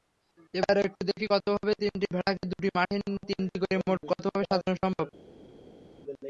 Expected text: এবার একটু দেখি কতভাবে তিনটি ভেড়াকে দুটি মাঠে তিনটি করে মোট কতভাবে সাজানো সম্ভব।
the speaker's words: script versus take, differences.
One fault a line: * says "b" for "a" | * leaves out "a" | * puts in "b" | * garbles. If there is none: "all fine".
all fine